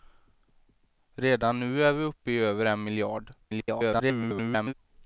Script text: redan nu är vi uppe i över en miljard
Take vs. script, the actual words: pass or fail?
fail